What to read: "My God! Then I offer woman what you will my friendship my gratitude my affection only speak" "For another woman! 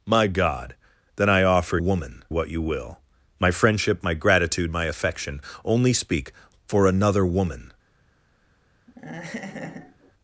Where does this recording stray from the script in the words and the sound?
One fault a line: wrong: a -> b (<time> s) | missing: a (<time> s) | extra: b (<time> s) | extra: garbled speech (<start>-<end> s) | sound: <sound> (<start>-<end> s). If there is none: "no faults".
sound: laugh (8.9-10.1 s)